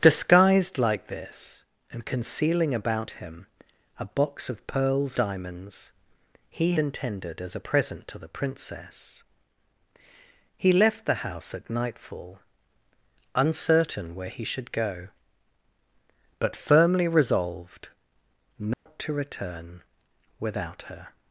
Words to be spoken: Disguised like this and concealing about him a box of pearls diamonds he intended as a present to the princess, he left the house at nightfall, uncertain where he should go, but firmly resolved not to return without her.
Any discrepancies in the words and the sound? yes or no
yes